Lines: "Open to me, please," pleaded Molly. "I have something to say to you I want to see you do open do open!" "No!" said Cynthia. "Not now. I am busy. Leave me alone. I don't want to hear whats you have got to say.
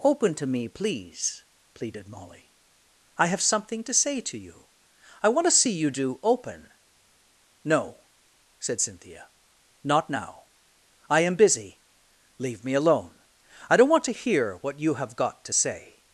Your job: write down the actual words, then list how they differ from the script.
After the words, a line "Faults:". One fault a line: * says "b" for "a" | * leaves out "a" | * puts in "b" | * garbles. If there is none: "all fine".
"Open to me, please," pleaded Molly. "I have something to say to you I want to see you do open!" "No!" said Cynthia. "Not now. I am busy. Leave me alone. I don't want to hear what you have got to say.
Faults:
* leaves out "do open"
* says "what" for "whats"